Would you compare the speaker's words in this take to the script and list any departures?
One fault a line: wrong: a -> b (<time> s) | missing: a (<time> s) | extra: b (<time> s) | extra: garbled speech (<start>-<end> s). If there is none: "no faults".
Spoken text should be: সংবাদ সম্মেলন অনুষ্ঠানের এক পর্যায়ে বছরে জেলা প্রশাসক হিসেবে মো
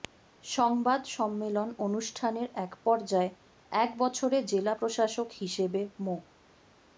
extra: এক (3.7 s)